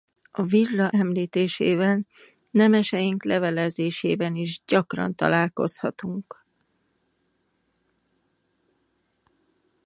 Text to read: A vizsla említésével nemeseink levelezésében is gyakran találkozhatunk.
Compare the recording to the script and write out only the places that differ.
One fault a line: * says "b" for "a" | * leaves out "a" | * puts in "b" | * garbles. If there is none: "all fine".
all fine